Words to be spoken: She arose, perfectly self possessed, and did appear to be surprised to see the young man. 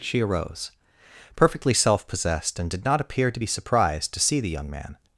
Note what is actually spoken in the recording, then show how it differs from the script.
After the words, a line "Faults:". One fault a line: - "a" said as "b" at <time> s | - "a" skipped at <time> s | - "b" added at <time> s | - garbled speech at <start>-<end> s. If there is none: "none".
She arose, perfectly self possessed, and did not appear to be surprised to see the young man.
Faults:
- "not" added at 2.9 s